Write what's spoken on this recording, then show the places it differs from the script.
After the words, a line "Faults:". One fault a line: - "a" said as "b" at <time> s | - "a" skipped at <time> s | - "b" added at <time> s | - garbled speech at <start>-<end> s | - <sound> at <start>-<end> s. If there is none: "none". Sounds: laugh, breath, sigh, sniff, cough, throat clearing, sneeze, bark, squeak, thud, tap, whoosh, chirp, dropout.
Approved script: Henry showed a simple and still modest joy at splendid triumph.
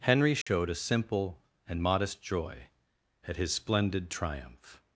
Henry showed a simple and modest joy at his splendid triumph.
Faults:
- dropout at 0.4-0.5 s
- "still" skipped at 1.8 s
- "his" added at 3.4 s